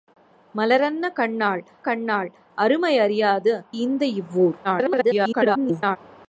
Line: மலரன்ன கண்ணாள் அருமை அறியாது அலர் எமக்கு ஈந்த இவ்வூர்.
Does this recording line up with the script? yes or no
no